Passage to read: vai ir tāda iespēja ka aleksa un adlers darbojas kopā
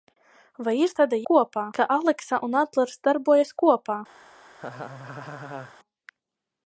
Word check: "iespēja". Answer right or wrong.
wrong